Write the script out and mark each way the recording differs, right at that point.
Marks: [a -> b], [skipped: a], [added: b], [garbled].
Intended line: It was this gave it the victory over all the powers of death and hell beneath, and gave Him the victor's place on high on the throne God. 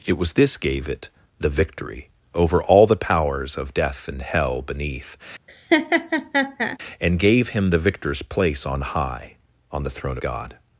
It was this gave it the victory over all the powers of death and hell beneath, and gave Him the victor's place on high on the throne God.